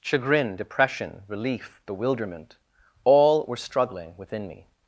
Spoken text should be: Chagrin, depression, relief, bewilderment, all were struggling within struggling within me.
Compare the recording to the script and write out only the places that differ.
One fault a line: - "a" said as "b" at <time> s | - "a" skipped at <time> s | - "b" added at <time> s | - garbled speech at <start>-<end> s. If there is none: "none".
- "struggling within" skipped at 4.5 s